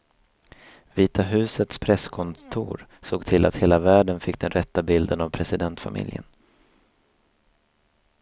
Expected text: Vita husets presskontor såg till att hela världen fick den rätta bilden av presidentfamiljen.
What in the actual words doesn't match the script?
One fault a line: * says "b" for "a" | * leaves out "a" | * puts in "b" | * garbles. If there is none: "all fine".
all fine